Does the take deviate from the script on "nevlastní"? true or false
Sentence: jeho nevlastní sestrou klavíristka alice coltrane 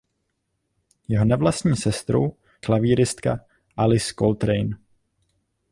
false